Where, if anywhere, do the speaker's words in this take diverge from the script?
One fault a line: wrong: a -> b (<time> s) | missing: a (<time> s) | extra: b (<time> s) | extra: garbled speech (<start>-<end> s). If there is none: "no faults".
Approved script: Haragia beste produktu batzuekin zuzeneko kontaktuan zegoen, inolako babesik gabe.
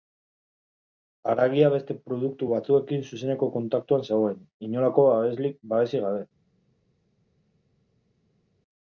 no faults